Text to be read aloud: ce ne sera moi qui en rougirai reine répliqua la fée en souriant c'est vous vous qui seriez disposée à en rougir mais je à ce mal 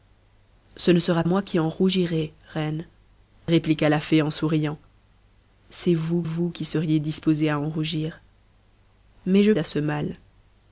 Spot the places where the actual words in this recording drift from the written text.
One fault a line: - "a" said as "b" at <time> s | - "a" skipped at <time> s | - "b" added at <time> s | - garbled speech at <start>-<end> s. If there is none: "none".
none